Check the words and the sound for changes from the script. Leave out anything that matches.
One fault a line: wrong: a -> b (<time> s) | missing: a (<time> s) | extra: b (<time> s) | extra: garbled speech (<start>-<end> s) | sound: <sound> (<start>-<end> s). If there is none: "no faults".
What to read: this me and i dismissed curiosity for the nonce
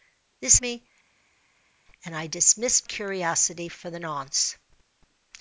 no faults